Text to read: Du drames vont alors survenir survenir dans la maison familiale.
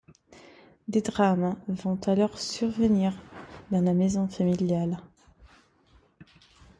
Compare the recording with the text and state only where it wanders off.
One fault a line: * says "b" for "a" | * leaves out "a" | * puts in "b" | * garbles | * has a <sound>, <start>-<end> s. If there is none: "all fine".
* says "Des" for "Du"
* leaves out "survenir"